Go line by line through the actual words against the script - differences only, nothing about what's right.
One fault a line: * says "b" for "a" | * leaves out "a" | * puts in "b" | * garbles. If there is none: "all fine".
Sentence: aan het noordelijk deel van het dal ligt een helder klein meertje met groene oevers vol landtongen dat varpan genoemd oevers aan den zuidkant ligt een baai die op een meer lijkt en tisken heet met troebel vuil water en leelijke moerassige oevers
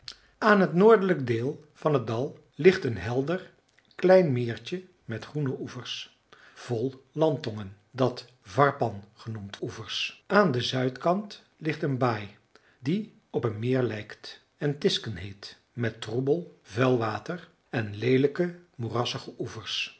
all fine